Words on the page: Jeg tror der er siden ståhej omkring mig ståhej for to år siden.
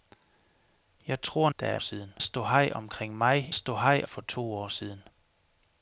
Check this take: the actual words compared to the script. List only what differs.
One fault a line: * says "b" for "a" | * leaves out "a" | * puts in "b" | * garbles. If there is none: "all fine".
all fine